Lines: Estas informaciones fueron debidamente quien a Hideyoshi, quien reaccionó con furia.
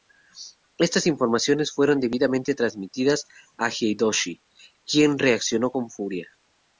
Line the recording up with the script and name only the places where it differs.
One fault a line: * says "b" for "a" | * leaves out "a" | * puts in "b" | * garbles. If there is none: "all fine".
* says "transmitidas" for "quien"